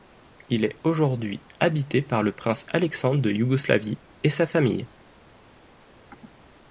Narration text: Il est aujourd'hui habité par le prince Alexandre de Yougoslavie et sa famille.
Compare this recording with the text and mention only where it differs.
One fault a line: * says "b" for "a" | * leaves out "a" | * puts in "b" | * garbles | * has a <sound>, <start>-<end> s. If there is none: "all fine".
all fine